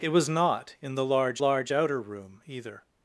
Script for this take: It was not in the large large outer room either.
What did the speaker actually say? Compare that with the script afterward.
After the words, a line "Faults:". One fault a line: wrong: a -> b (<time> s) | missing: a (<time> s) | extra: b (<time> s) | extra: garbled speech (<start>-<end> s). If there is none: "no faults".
It was not in the large large outer room either.
Faults:
no faults